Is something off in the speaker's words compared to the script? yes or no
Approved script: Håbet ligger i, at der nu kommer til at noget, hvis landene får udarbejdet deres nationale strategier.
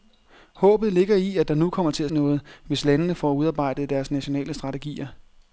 no